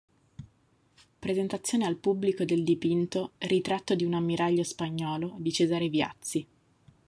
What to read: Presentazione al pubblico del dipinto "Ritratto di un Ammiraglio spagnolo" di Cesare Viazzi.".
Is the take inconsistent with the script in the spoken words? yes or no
no